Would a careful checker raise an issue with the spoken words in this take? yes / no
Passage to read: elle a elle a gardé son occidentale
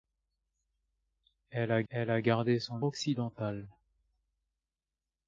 no